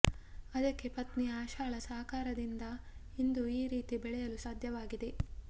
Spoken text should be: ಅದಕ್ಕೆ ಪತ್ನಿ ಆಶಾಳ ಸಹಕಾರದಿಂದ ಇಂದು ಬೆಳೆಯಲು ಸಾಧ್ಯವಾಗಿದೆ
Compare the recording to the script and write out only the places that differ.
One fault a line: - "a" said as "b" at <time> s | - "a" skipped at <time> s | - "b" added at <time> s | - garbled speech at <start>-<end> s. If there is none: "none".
- "ಈ ರೀತಿ" added at 3.6 s